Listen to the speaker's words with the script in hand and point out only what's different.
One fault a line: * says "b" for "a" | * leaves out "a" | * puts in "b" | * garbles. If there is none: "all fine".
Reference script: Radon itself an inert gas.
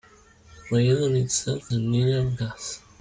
all fine